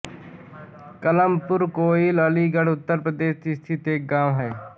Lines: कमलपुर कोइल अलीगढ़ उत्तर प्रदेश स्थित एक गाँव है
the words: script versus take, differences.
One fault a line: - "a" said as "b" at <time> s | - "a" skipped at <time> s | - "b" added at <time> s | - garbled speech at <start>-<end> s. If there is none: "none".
none